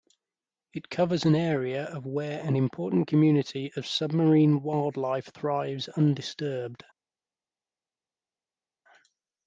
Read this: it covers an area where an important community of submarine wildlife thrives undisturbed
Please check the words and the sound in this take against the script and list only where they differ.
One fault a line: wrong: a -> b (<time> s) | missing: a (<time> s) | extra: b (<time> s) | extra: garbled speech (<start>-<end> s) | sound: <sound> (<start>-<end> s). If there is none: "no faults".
extra: of (1.8 s)